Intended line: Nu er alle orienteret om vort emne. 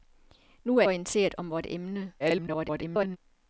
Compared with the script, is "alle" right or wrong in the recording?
wrong